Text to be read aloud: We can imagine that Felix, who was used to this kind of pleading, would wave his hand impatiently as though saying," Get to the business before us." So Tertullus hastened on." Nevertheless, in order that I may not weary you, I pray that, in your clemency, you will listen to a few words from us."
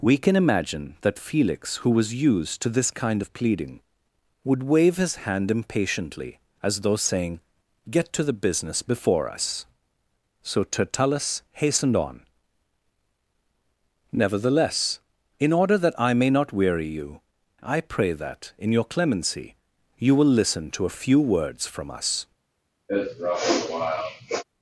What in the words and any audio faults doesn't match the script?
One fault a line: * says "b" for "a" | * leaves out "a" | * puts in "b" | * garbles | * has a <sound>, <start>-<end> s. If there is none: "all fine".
* has a sniff, 22.9-24.4 s